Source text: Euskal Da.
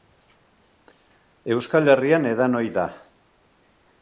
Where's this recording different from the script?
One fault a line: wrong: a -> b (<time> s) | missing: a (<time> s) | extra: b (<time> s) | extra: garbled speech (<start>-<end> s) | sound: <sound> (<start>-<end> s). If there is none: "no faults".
extra: Herrian edan ohi (1.9 s)